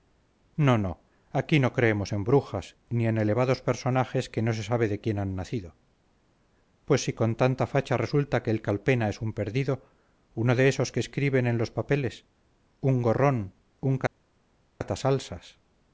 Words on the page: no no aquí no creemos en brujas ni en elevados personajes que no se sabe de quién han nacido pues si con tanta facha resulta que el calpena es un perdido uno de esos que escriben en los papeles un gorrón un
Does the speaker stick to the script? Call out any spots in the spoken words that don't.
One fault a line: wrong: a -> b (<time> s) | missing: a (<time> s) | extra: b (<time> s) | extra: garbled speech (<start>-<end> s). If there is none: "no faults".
no faults